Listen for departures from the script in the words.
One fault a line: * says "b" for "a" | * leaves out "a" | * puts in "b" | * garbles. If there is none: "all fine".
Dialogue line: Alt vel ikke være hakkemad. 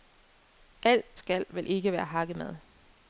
* puts in "skal"